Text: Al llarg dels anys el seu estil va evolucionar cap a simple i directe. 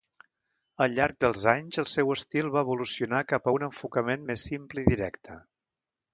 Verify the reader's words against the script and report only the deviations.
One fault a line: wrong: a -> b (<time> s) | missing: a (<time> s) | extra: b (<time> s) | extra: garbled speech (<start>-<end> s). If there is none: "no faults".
extra: un enfocament més (3.6 s)